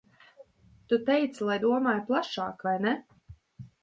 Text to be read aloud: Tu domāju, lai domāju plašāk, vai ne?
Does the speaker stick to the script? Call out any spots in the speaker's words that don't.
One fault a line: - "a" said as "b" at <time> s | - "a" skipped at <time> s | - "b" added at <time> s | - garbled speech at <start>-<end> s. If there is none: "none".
- "domāju" said as "teici" at 1.1 s